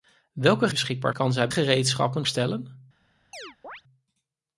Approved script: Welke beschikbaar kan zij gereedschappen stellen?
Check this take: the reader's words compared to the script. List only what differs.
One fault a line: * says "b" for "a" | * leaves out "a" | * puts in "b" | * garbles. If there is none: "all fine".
all fine